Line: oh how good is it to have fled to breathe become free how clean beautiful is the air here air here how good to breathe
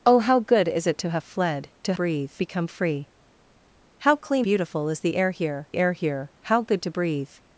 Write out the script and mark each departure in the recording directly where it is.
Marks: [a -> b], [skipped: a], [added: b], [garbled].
oh how good is it to have fled to breathe become free how clean beautiful is the air here air here how good to breathe